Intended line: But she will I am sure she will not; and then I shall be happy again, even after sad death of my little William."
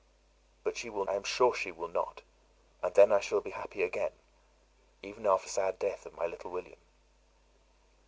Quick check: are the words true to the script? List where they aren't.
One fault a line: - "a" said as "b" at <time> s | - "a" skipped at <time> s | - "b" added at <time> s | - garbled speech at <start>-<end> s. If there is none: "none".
none